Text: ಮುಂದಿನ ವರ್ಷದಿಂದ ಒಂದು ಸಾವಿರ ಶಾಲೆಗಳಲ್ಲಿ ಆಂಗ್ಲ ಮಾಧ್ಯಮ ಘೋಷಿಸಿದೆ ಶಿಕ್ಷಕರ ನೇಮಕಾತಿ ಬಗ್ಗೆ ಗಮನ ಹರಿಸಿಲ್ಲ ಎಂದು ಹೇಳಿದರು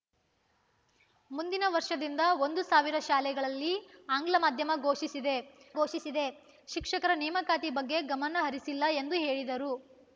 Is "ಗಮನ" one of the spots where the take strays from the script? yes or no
no